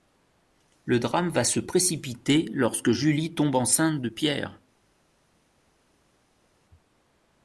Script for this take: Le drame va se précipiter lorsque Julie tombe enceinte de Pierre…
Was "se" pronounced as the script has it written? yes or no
yes